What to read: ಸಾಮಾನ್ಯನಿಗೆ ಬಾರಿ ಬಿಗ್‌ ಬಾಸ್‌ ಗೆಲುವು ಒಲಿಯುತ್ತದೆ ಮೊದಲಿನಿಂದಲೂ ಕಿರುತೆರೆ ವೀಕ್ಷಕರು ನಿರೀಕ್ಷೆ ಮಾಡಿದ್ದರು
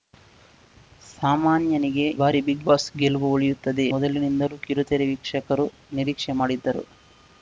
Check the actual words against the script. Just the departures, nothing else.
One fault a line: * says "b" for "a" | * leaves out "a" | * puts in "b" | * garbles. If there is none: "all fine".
all fine